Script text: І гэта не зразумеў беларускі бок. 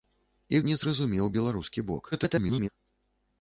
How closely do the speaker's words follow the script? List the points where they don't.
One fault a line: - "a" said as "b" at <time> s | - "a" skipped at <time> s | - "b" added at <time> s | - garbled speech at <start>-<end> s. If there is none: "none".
- "гэта" skipped at 0.6 s
- garbled speech at 2.1-2.7 s